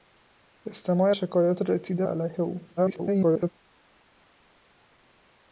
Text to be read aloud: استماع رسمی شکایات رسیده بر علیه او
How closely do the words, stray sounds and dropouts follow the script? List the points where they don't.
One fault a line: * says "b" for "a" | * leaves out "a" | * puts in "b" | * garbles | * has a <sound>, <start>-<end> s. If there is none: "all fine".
* leaves out "رسمی"
* leaves out "بر"
* garbles